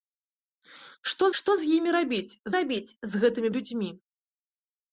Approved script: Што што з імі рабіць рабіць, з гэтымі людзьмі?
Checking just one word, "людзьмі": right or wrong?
right